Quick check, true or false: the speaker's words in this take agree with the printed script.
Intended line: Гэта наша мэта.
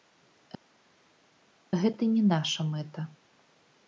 false